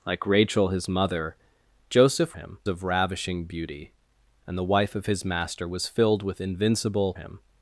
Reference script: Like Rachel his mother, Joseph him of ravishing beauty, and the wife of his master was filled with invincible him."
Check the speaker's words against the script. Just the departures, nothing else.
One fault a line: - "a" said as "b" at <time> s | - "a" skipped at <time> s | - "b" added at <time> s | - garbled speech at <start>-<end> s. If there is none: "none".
none